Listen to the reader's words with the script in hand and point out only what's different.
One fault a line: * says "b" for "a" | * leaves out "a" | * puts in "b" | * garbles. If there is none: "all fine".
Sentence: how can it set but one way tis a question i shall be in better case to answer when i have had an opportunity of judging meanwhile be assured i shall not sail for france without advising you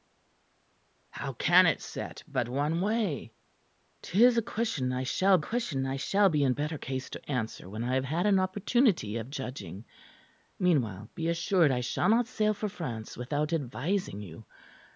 * puts in "question i shall"